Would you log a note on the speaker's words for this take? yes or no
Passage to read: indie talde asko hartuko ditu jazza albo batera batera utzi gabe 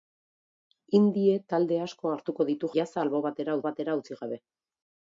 no